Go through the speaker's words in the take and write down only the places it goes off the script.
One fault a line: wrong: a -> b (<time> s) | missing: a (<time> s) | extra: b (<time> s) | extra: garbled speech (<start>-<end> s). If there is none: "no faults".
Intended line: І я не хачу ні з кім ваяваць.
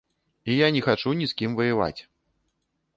no faults